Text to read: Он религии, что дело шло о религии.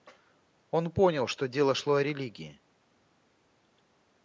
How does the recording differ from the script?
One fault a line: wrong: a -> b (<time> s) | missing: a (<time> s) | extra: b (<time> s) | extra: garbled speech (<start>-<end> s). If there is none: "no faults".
wrong: религии -> понял (0.9 s)